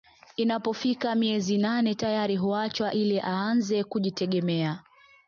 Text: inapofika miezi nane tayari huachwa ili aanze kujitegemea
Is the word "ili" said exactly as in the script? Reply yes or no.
yes